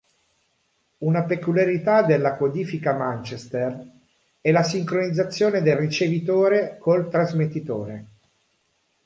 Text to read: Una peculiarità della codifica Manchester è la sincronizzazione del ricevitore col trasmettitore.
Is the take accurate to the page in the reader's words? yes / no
yes